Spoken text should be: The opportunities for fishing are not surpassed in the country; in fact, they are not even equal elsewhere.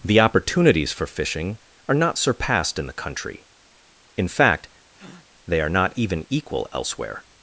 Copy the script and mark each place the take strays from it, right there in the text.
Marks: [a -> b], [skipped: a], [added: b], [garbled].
The opportunities for fishing are not surpassed in the country; in fact, they are not even equal elsewhere.